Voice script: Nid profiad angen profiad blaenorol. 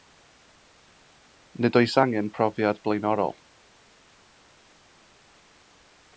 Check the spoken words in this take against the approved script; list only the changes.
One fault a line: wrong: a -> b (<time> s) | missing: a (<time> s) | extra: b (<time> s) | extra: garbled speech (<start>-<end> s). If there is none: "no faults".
wrong: profiad -> oes (1.8 s)